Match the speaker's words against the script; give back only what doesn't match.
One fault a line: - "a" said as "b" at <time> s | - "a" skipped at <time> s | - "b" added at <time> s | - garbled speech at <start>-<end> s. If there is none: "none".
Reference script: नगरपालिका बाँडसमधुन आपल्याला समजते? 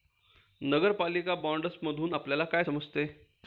- "काय" added at 2.4 s